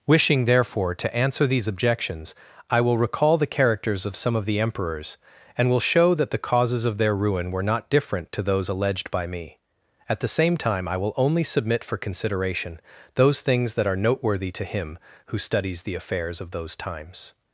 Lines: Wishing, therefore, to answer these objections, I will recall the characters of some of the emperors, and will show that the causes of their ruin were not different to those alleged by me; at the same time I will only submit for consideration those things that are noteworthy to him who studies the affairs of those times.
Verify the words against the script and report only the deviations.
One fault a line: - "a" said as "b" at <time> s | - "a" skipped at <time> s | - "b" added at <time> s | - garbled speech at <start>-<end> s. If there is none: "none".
none